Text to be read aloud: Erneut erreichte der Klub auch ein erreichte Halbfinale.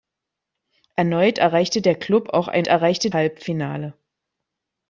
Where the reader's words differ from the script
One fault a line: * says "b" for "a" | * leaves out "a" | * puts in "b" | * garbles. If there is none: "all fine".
all fine